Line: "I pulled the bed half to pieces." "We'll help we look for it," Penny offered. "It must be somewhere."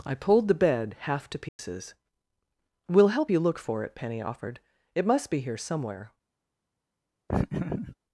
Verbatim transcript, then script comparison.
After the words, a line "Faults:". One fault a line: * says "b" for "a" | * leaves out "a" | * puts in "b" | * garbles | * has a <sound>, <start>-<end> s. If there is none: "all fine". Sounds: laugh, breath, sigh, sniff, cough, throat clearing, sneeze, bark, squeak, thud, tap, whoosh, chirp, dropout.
"I pulled the bed half to pieces." "We'll help you look for it," Penny offered. "It must be here somewhere."
Faults:
* has a dropout, 1.5-1.6 s
* says "you" for "we"
* puts in "here"
* has a laugh, 7.3-8.0 s